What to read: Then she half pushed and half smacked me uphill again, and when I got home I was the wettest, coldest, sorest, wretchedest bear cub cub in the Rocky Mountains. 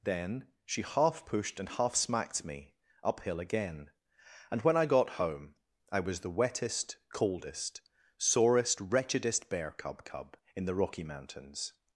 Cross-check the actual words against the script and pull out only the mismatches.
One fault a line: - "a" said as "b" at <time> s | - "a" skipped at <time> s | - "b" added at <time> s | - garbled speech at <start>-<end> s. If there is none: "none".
none